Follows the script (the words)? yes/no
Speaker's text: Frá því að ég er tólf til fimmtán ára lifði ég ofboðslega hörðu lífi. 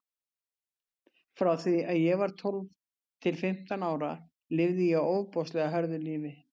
no